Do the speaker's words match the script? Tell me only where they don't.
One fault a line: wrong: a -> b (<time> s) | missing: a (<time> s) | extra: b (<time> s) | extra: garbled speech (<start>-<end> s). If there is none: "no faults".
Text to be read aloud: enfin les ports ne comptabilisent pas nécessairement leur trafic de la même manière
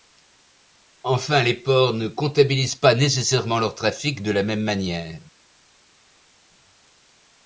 no faults